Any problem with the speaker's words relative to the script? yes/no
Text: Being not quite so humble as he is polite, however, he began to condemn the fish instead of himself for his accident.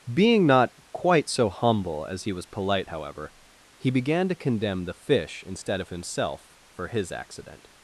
yes